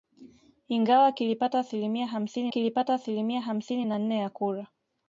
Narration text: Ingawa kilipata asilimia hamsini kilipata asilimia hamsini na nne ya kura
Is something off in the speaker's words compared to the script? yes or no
no